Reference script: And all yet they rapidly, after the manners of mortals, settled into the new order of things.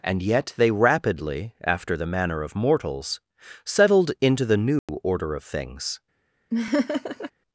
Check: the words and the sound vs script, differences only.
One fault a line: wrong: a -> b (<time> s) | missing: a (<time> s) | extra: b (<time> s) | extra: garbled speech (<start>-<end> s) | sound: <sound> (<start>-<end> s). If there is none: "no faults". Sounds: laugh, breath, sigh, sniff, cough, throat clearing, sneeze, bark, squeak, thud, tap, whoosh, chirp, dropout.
missing: all (0.2 s)
wrong: manners -> manner (2.1 s)
sound: dropout (4.8-4.9 s)
sound: laugh (6.5-7.3 s)